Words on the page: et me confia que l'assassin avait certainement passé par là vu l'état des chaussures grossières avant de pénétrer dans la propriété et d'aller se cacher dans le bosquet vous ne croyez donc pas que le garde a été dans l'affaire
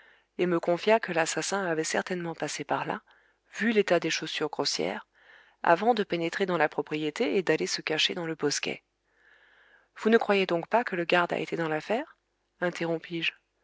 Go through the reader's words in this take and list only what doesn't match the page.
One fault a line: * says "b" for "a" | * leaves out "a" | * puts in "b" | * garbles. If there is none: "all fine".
all fine